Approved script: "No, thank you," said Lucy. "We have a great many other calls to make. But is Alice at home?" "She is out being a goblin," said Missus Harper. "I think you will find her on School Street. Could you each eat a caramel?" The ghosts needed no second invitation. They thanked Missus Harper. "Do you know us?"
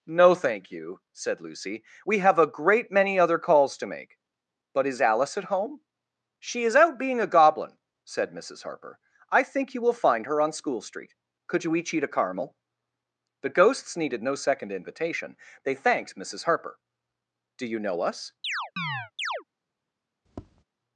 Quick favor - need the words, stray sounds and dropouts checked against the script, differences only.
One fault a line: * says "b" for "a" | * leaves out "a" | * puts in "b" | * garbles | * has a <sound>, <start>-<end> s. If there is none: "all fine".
* has a chirp, 18.4-19.4 s
* has a tap, 20.3-20.6 s